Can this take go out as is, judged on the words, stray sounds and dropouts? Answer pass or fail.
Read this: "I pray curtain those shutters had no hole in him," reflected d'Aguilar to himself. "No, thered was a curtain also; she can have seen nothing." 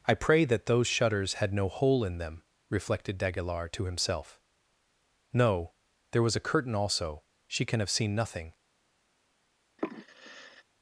fail